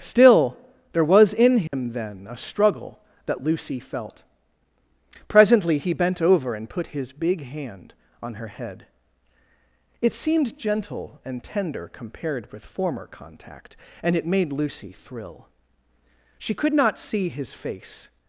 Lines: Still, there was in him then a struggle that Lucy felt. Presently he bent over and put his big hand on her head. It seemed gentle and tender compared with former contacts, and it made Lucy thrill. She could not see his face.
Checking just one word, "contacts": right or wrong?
wrong